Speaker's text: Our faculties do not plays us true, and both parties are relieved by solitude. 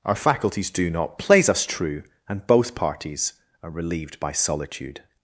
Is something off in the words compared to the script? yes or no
no